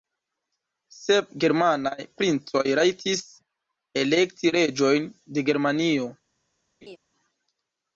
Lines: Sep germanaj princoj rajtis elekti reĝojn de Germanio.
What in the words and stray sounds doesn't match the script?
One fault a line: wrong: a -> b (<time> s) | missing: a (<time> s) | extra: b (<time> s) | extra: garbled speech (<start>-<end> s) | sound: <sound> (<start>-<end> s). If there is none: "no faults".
sound: laugh (6.8-7.0 s)